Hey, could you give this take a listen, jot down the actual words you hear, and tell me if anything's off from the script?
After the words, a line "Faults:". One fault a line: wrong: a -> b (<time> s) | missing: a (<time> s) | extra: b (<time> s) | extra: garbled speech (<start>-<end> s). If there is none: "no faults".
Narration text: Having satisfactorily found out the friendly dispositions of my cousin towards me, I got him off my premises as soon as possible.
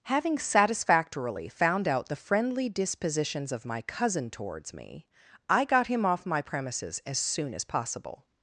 Having satisfactorily found out the friendly dispositions of my cousin towards me, I got him off my premises as soon as possible.
Faults:
no faults